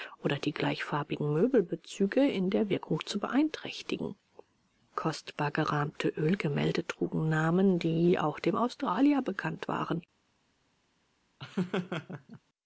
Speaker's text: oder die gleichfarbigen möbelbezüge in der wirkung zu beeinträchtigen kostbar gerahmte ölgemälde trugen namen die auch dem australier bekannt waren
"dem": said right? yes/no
yes